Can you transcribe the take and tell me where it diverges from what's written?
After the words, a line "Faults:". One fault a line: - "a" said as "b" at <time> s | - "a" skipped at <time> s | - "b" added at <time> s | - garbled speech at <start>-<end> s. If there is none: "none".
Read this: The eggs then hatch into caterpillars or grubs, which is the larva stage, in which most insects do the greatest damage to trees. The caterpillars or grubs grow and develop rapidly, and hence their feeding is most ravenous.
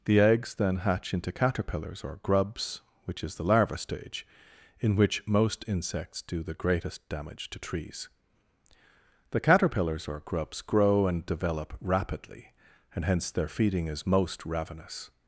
The eggs then hatch into caterpillars or grubs, which is the larva stage, in which most insects do the greatest damage to trees. The caterpillars or grubs grow and develop rapidly, and hence their feeding is most ravenous.
Faults:
none